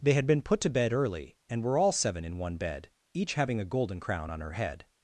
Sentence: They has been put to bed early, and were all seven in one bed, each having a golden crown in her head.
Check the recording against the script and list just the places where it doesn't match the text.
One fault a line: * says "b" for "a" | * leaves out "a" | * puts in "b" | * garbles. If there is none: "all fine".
* says "had" for "has"
* says "on" for "in"